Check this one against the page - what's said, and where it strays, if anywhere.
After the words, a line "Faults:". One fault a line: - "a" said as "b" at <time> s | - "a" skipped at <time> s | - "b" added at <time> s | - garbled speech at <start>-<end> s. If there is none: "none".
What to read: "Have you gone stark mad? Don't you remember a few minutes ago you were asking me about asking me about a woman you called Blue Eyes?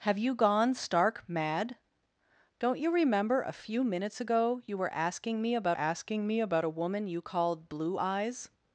"Have you gone stark mad? Don't you remember a few minutes ago you were asking me about asking me about a woman you called Blue Eyes?
Faults:
none